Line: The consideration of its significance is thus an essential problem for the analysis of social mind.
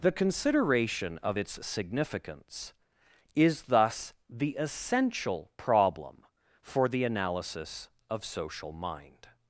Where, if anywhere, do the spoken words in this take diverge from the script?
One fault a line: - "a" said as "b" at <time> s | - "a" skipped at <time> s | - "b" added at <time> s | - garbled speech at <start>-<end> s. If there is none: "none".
- "an" said as "the" at 4.3 s